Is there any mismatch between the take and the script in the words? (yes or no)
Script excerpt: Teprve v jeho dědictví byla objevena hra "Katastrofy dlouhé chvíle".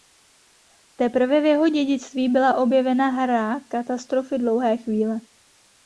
no